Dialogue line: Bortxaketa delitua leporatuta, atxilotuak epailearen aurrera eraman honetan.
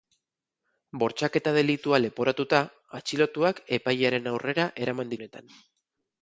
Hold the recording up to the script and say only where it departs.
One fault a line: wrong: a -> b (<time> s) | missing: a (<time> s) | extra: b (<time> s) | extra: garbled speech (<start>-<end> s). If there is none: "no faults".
no faults